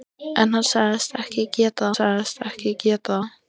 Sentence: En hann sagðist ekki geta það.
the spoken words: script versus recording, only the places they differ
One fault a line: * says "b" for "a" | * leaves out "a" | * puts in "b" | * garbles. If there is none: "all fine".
* puts in "sagðist ekki geta"